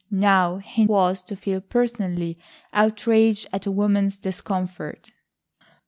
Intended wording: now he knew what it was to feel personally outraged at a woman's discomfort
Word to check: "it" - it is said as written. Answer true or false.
false